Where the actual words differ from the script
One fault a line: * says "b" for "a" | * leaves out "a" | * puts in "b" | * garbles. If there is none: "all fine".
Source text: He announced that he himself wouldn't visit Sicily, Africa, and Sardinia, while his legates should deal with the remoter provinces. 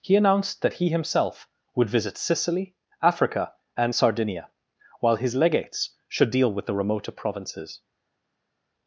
* says "would" for "wouldn't"